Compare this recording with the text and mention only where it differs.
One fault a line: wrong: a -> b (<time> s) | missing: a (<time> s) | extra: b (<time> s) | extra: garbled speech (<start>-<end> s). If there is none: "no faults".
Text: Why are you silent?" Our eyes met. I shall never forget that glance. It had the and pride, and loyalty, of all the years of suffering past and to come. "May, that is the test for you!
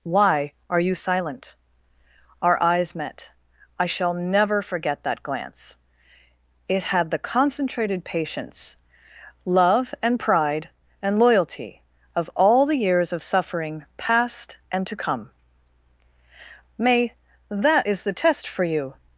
extra: concentrated patience love (7.2 s)